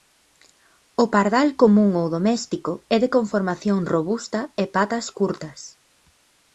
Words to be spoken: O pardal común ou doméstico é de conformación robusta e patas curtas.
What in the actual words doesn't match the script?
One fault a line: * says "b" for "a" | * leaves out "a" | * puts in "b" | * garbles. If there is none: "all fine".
all fine